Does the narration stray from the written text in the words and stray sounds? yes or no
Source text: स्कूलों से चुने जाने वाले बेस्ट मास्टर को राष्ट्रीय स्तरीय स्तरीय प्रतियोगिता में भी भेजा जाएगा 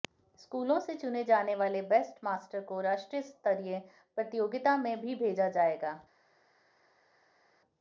yes